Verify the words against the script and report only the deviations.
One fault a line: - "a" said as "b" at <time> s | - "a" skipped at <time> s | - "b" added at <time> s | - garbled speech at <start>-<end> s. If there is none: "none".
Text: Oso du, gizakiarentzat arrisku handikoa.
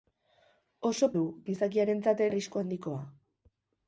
none